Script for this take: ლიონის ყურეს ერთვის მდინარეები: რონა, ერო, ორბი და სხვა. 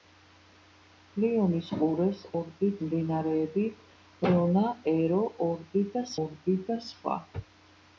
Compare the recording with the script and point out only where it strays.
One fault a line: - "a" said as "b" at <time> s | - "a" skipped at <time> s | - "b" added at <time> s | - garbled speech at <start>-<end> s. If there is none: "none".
- "ერთვის" said as "ორბი" at 2.4 s
- "ორბი და" added at 6.2 s